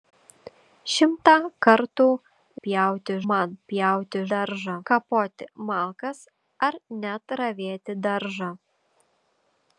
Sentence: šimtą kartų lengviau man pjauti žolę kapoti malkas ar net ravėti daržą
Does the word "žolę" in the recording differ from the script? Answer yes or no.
yes